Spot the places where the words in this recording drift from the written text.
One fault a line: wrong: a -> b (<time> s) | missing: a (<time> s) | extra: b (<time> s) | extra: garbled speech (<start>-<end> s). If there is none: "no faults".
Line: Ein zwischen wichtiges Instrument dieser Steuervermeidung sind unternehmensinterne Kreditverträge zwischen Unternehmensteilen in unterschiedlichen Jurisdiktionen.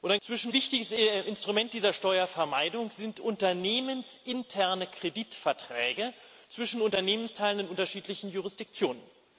no faults